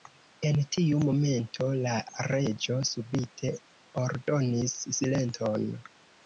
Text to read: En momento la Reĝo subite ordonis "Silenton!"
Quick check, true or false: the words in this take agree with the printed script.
false